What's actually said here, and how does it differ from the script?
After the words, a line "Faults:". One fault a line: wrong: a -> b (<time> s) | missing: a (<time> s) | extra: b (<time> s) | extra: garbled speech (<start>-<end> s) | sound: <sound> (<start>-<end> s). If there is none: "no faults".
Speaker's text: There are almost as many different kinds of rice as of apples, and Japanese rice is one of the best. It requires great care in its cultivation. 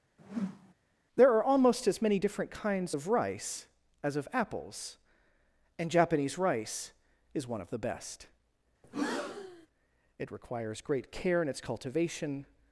There are almost as many different kinds of rice as of apples, and Japanese rice is one of the best. It requires great care in its cultivation.
Faults:
sound: whoosh (0.2-0.7 s)
sound: breath (8.8-9.7 s)